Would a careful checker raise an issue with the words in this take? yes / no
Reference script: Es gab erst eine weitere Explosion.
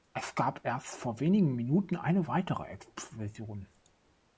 yes